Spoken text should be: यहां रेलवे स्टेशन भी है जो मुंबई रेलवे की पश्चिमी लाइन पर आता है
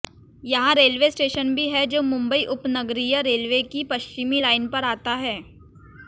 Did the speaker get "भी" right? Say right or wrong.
right